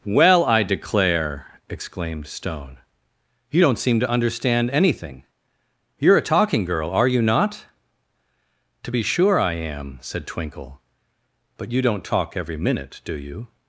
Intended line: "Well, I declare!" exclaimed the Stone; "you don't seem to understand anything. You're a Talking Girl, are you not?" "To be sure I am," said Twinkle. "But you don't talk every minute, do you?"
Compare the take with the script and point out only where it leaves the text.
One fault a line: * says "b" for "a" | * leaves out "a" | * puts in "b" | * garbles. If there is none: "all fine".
* leaves out "the"